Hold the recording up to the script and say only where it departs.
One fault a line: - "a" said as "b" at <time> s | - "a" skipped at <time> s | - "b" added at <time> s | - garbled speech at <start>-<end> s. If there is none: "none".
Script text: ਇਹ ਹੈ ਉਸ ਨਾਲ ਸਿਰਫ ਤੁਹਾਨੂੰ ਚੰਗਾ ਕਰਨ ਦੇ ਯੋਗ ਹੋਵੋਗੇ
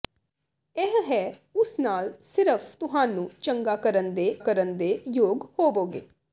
- "ਕਰਨ ਦੇ" added at 4.4 s